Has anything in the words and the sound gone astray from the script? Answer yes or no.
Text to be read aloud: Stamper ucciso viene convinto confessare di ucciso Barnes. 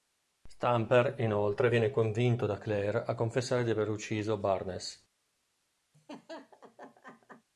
yes